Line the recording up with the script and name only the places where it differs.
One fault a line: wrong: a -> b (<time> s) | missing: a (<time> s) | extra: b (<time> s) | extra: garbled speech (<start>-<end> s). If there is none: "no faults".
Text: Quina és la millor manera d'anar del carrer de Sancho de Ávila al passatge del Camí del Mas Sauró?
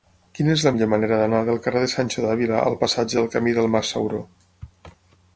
no faults